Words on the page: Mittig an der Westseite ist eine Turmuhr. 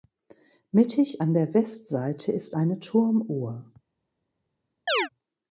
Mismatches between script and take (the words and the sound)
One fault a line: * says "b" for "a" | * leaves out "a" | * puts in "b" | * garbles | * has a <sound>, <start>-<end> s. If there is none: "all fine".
* has a chirp, 4.9-5.1 s